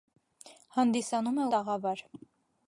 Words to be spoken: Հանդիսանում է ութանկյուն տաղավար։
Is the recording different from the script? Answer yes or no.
yes